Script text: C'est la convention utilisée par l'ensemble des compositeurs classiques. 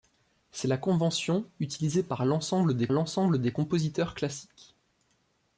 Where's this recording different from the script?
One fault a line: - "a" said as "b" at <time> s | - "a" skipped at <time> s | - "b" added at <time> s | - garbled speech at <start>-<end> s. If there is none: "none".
- "l'ensemble des" added at 2.9 s